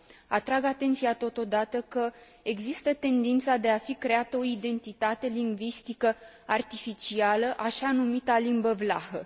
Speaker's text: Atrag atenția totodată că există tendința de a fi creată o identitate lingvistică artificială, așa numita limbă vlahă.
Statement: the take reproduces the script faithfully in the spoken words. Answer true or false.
true